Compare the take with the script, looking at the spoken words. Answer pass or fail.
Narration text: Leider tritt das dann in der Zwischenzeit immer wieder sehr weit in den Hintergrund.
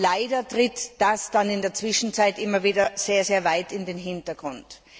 pass